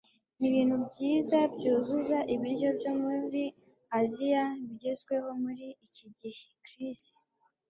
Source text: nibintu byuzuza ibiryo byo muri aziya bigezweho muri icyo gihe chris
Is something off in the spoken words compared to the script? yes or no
yes